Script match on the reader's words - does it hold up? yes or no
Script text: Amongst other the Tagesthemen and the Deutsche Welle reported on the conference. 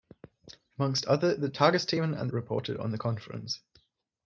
no